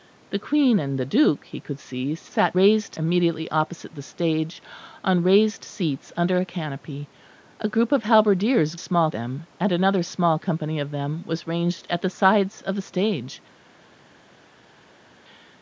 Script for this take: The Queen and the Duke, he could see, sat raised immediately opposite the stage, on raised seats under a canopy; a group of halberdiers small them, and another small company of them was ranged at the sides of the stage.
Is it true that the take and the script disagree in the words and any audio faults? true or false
false